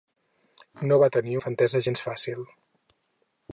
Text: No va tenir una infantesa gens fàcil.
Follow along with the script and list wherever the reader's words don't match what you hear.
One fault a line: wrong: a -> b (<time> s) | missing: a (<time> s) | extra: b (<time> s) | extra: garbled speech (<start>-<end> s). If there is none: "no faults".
missing: una (1.4 s)